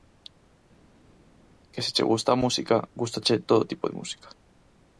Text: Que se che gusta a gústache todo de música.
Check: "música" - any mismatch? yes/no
no